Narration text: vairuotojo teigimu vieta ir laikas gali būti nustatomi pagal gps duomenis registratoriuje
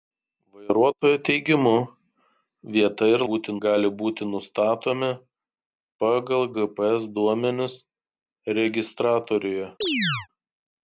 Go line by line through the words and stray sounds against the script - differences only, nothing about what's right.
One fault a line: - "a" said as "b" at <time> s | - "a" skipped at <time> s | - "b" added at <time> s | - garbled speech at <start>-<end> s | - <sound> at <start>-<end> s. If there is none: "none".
- "laikas" said as "būti" at 3.3 s
- chirp at 9.8-10.3 s